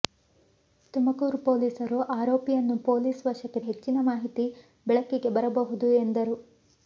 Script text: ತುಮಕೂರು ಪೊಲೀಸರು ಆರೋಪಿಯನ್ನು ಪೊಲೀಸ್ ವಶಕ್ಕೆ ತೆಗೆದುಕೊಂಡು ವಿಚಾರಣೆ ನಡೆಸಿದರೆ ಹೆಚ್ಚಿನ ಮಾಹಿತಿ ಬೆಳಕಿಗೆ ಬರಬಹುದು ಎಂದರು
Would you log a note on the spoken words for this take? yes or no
yes